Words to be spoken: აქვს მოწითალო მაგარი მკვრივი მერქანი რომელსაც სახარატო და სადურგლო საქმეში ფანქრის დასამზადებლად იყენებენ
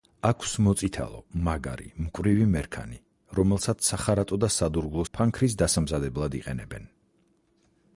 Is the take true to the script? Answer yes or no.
no